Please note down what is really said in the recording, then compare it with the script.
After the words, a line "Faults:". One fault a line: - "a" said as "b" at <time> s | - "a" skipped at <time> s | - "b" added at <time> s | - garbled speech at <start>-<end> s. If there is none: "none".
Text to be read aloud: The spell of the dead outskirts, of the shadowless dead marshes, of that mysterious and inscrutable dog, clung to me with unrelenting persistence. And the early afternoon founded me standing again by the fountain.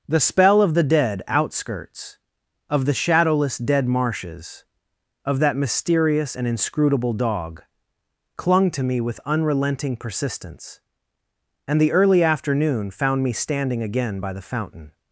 The spell of the dead outskirts, of the shadowless dead marshes, of that mysterious and inscrutable dog, clung to me with unrelenting persistence. And the early afternoon found me standing again by the fountain.
Faults:
- "founded" said as "found" at 12.9 s